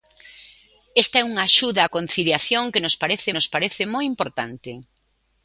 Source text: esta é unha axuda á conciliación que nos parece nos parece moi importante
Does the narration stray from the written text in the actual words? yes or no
no